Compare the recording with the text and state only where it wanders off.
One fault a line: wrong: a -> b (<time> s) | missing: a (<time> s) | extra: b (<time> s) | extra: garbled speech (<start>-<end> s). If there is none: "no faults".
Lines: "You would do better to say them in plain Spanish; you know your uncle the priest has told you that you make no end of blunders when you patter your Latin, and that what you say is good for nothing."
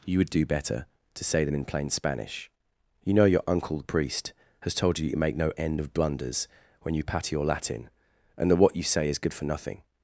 no faults